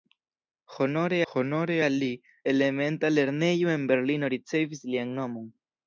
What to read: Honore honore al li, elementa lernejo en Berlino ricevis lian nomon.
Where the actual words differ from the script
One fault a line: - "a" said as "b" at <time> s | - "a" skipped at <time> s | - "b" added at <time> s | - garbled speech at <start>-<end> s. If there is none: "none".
none